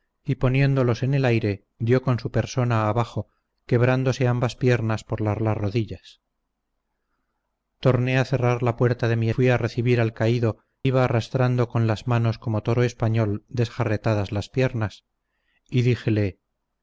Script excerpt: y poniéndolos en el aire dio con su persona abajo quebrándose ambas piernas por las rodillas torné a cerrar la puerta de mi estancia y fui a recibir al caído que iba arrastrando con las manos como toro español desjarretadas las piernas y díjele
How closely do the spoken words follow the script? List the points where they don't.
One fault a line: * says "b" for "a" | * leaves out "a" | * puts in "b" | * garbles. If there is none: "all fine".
* puts in "las"
* leaves out "estancia y"
* leaves out "que"